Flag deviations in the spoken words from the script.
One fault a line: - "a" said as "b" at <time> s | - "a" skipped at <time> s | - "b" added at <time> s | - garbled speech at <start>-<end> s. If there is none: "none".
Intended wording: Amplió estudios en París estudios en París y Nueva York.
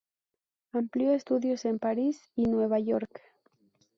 - "estudios en París" skipped at 2.3 s